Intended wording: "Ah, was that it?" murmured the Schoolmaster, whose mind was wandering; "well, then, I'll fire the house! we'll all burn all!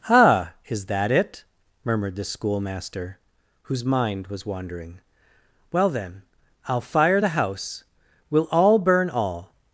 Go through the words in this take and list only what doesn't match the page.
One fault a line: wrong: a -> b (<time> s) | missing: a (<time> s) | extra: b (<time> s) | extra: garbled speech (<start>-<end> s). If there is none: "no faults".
wrong: was -> is (0.7 s)